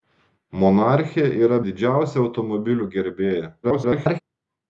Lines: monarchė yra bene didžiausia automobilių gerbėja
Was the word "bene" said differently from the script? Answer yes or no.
yes